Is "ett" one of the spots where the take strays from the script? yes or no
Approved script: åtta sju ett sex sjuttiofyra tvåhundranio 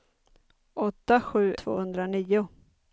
yes